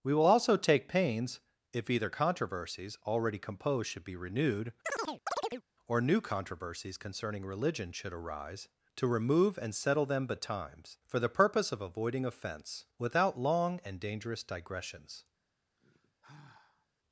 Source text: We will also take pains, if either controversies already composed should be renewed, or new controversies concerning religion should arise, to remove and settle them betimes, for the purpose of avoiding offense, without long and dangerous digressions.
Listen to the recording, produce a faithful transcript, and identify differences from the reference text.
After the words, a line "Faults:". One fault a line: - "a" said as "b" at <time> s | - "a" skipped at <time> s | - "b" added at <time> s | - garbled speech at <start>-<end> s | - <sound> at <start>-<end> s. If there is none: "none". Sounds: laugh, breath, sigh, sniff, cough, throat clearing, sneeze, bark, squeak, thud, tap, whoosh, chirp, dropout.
We will also take pains, if either controversies already composed should be renewed, or new controversies concerning religion should arise, to remove and settle them betimes, for the purpose of avoiding offense, without long and dangerous digressions.
Faults:
- chirp at 4.8-5.6 s
- sigh at 15.8-16.9 s